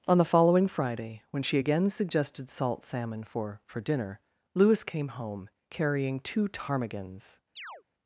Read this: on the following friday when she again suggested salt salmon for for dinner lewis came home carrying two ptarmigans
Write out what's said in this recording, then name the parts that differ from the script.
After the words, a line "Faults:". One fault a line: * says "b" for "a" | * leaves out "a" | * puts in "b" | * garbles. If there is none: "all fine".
on the following friday when she again suggested salt salmon for for dinner lewis came home carrying two ptarmigans
Faults:
all fine